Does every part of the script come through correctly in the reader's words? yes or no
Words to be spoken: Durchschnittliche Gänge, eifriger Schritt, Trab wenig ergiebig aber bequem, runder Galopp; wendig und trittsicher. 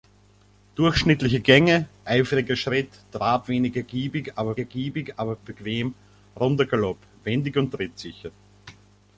no